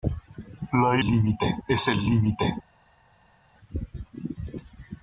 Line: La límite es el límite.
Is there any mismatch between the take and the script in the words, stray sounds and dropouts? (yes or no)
no